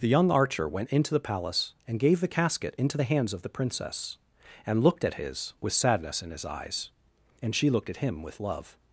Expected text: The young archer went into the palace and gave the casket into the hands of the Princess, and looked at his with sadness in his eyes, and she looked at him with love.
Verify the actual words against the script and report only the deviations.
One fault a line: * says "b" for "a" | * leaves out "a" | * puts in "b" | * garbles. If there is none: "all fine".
all fine